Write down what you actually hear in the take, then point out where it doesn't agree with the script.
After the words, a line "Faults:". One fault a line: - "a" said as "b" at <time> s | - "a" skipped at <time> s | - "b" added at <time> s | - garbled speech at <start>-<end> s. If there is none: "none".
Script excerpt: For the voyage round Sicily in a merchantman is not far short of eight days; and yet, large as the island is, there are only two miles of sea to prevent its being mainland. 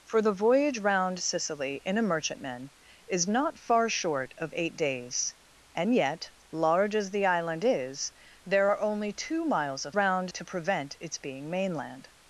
For the voyage round Sicily in a merchantman is not far short of eight days; and yet, large as the island is, there are only two miles of round to prevent its being mainland.
Faults:
- "sea" said as "round" at 9.9 s